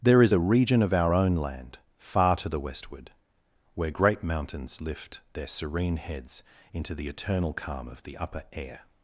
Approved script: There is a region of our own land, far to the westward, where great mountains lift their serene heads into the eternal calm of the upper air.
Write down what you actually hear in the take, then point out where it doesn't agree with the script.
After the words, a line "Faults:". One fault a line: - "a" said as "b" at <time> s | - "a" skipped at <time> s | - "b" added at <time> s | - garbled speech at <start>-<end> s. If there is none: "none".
There is a region of our own land, far to the westward, where great mountains lift their serene heads into the eternal calm of the upper air.
Faults:
none